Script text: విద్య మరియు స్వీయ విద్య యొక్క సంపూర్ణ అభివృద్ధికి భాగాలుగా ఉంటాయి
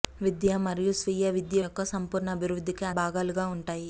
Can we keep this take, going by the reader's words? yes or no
yes